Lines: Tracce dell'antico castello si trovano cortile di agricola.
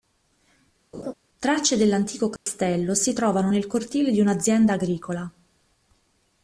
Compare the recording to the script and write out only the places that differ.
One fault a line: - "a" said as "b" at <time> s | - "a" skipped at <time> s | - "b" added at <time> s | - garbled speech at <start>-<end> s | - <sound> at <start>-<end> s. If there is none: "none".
- laugh at 0.9-1.1 s
- dropout at 2.4-2.5 s
- "nel" added at 3.5 s
- "un'azienda" added at 4.2 s